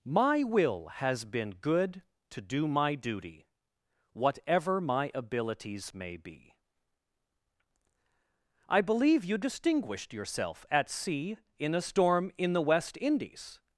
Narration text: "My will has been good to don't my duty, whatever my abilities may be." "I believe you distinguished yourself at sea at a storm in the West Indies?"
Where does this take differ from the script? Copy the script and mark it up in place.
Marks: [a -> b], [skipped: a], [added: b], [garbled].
"My will has been good to [don't -> do] my duty, whatever my abilities may be." "I believe you distinguished yourself at sea [at -> in] a storm in the West Indies?"